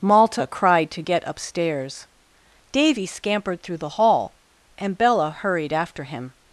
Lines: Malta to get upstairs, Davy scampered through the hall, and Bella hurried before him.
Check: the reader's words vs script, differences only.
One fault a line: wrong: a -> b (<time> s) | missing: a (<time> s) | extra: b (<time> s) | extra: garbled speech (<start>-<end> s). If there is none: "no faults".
extra: cried (0.5 s)
wrong: before -> after (5.7 s)